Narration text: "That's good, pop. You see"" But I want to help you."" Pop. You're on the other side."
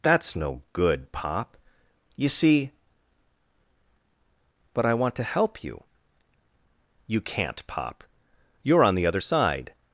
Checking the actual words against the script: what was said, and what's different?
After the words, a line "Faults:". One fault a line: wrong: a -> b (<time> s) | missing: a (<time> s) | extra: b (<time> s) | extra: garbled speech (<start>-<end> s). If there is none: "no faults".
"That's no good, pop. You see"" But I want to help you."" You can't, pop. You're on the other side."
Faults:
extra: no (0.3 s)
extra: You can't (7.1 s)